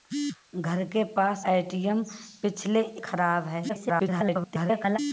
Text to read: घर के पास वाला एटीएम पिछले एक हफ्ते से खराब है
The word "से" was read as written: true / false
false